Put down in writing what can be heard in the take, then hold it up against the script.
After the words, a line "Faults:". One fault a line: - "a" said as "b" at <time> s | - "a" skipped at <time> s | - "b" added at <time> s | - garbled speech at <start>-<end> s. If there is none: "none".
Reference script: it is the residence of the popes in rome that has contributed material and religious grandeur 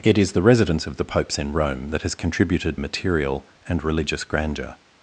it is the residence of the popes in rome that has contributed material and religious grandeur
Faults:
none